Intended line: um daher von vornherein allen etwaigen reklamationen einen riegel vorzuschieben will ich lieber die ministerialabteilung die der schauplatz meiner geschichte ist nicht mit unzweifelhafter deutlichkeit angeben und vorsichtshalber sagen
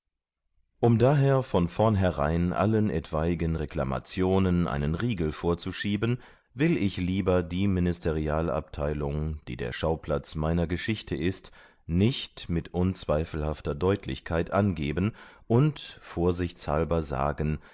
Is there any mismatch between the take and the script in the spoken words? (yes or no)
no